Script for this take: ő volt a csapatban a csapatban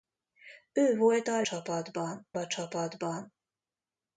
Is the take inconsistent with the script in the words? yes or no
no